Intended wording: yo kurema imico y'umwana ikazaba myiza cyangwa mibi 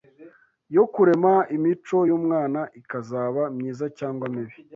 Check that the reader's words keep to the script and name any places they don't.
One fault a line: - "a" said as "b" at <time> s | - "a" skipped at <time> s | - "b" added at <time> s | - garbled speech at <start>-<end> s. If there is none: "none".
none